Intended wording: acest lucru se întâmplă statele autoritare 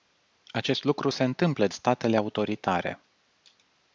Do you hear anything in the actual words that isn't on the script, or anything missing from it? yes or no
no